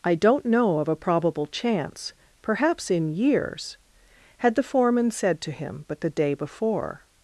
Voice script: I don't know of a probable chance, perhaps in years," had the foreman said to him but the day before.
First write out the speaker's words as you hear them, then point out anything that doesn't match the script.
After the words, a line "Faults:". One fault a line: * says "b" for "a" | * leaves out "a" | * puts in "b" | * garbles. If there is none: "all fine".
I don't know of a probable chance, perhaps in years," had the foreman said to him but the day before.
Faults:
all fine